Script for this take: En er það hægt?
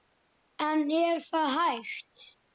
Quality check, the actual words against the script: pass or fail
pass